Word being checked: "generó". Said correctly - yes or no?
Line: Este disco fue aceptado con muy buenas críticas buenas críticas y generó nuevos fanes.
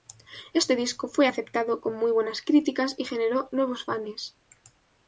yes